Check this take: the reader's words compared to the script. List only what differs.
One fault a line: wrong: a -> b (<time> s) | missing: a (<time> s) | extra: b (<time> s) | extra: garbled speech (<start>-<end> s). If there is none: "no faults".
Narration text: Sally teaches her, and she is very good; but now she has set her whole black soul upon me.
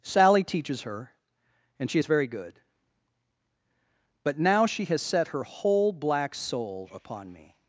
no faults